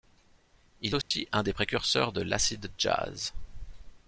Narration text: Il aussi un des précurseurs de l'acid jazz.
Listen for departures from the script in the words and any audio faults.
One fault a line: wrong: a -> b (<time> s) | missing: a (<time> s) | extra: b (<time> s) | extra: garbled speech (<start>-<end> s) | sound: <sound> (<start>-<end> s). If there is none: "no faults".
sound: dropout (1.0-1.1 s)